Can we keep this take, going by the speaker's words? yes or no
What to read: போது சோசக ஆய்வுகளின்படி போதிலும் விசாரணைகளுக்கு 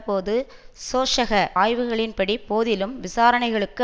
yes